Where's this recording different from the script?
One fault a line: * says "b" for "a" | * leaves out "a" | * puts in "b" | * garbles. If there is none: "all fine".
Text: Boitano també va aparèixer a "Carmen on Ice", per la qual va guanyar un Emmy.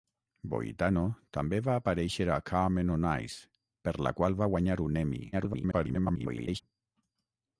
* garbles